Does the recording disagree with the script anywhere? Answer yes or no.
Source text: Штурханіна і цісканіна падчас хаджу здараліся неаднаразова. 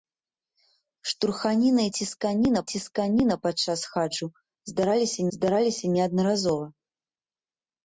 yes